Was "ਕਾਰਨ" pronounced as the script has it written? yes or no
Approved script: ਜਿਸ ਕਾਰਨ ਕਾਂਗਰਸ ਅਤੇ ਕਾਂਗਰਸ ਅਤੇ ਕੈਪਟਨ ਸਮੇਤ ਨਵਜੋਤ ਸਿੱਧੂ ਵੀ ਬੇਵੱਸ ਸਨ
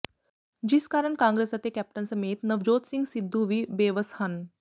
yes